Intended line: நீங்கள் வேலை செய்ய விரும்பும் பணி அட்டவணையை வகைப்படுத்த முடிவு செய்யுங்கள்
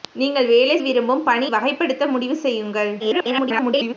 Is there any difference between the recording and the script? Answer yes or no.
yes